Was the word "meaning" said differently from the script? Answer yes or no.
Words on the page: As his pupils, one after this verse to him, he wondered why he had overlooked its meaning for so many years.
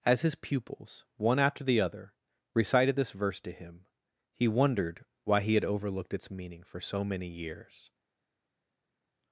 no